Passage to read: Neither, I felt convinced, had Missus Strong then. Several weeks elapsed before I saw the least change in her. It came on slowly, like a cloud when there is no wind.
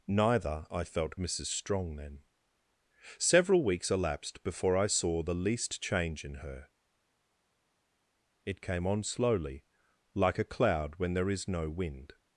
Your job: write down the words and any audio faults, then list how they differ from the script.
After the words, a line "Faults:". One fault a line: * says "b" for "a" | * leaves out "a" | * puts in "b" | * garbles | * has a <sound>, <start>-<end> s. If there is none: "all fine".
Neither, I felt Missus Strong then. Several weeks elapsed before I saw the least change in her. It came on slowly, like a cloud when there is no wind.
Faults:
* leaves out "convinced had"